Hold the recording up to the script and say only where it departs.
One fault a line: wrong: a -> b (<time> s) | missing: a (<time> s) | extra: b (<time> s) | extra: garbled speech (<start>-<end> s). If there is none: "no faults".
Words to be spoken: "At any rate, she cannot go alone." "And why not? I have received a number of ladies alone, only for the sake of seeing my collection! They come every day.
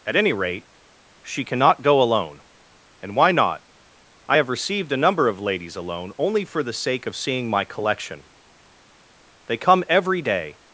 no faults